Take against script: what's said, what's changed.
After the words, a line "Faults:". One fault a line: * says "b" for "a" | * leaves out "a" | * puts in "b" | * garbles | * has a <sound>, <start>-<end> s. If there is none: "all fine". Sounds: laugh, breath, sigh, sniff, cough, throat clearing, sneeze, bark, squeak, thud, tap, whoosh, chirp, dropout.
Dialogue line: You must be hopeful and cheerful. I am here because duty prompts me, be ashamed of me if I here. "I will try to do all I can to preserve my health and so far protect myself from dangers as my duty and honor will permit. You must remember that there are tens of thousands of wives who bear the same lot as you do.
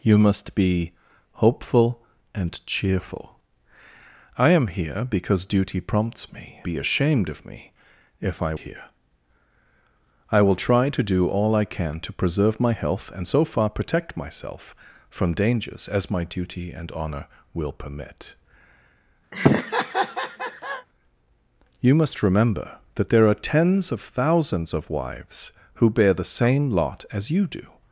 You must be hopeful and cheerful. I am here because duty prompts me, be ashamed of me if I here. "I will try to do all I can to preserve my health and so far protect myself from dangers as my duty and honor will permit. You must remember that there are tens of thousands of wives who bear the same lot as you do.
Faults:
* has a laugh, 19.3-20.9 s